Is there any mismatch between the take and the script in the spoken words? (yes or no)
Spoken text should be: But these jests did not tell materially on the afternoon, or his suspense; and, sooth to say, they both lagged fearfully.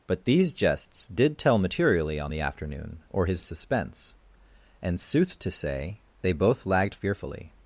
yes